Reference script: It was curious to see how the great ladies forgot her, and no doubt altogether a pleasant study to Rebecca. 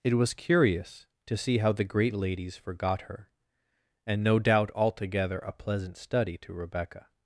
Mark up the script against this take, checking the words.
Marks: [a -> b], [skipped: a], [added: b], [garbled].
It was curious to see how the great ladies forgot her, and no doubt altogether a pleasant study to Rebecca.